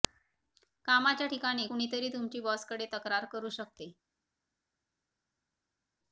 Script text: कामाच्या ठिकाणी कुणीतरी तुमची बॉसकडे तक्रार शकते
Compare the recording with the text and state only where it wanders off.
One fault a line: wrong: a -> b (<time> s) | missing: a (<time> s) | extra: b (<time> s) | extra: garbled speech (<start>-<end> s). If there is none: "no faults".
extra: करू (3.3 s)